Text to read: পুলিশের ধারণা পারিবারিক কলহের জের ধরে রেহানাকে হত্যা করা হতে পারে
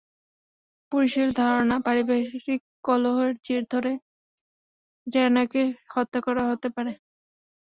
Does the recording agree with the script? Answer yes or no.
yes